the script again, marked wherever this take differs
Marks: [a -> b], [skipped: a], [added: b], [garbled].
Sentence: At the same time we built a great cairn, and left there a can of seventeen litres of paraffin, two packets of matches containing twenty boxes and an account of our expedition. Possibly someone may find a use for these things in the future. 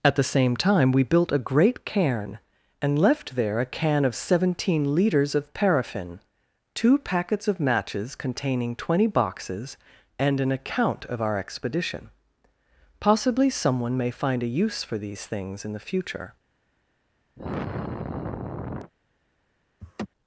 At the same time we built a great cairn, and left there a can of seventeen litres of paraffin, two packets of matches containing twenty boxes and an account of our expedition. Possibly someone may find a use for these things in the future.